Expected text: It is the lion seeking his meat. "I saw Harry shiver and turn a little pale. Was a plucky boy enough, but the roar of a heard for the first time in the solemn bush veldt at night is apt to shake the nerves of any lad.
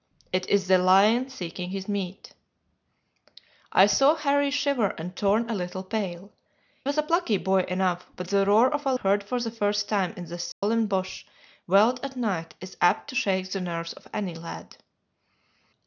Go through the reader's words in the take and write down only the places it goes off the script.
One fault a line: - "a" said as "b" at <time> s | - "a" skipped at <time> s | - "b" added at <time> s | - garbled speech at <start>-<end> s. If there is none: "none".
none